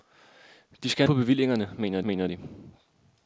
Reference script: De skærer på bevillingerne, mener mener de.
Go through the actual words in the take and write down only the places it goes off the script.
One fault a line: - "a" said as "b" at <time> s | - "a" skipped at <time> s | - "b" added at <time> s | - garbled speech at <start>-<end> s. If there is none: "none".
none